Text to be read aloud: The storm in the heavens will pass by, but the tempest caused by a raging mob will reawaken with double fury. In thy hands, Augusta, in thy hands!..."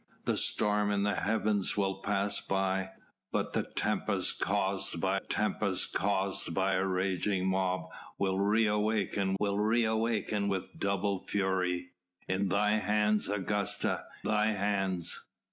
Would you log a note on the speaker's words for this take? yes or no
yes